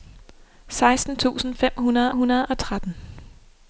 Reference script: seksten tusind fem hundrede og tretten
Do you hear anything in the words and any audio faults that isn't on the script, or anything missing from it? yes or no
yes